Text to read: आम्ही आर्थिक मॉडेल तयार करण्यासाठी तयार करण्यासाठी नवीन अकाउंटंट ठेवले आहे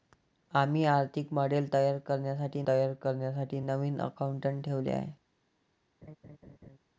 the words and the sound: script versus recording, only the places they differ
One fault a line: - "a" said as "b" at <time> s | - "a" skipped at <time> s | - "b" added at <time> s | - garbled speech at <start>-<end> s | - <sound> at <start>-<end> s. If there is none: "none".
- laugh at 6.0-6.8 s